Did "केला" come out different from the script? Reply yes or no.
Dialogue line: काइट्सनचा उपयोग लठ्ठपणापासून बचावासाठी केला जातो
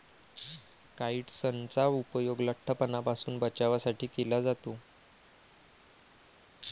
no